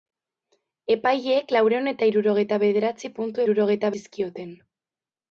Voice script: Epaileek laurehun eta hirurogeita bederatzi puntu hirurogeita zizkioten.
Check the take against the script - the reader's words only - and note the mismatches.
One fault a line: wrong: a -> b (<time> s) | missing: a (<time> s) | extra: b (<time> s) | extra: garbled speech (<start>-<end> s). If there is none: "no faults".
no faults